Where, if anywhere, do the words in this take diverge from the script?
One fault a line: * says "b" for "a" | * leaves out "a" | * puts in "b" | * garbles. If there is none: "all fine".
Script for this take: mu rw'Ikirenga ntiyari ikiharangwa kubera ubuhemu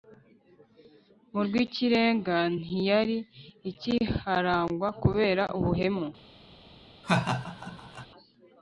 all fine